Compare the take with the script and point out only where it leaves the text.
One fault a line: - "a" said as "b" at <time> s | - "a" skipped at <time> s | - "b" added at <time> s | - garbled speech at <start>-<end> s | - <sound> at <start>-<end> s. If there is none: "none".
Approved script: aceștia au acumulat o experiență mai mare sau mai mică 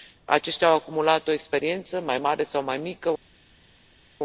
none